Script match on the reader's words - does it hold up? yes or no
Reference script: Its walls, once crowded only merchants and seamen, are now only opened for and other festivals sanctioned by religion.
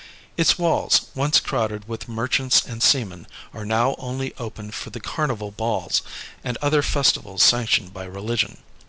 no